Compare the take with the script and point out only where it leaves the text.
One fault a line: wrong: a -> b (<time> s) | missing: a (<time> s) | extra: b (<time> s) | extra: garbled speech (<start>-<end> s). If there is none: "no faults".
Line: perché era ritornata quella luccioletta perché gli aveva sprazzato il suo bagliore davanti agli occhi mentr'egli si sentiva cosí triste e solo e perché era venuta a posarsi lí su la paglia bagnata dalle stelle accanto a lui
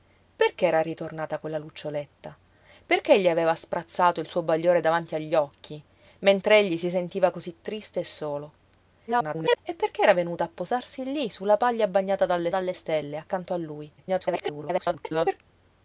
extra: garbled speech (9.1-9.6 s)
extra: dalle (12.5 s)
extra: garbled speech (14.0-15.4 s)